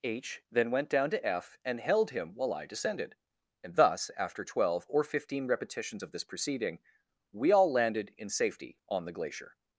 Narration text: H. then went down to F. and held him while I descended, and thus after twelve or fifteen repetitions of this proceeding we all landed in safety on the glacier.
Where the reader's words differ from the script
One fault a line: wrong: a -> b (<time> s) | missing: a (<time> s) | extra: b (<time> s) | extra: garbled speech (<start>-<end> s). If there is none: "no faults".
no faults